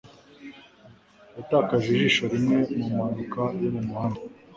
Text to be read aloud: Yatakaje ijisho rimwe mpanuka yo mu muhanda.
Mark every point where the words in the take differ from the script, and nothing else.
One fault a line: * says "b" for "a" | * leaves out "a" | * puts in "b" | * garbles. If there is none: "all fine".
* puts in "mu"